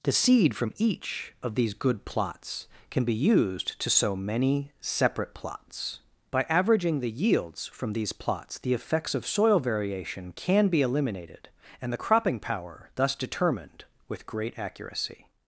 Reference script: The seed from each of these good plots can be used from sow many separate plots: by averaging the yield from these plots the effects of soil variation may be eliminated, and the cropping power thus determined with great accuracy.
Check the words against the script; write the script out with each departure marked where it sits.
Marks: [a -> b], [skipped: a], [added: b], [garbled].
The seed from each of these good plots can be used [from -> to] sow many separate plots: by averaging the [yield -> yields] from these plots the effects of soil variation [may -> can] be eliminated, and the cropping power thus determined with great accuracy.